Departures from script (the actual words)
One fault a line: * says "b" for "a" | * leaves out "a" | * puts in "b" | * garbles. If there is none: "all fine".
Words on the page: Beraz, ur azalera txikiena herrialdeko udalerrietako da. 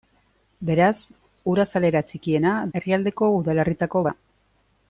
all fine